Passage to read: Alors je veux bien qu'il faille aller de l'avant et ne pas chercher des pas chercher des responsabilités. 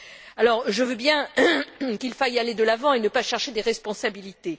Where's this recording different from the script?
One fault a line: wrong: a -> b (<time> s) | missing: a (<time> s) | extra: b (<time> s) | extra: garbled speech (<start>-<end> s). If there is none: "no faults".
missing: pas chercher des (3.6 s)